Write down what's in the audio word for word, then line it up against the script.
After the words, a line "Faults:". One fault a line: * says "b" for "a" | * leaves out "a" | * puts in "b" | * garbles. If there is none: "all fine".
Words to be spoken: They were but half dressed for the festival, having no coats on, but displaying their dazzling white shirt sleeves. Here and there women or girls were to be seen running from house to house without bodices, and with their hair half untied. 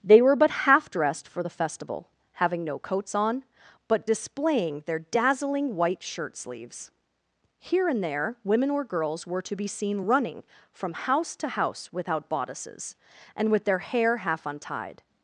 They were but half dressed for the festival, having no coats on, but displaying their dazzling white shirt sleeves. Here and there women or girls were to be seen running from house to house without bodices, and with their hair half untied.
Faults:
all fine